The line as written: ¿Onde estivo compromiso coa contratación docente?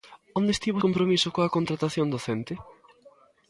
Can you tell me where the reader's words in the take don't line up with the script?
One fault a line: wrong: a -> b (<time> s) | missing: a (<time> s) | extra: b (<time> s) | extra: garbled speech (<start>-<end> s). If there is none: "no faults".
no faults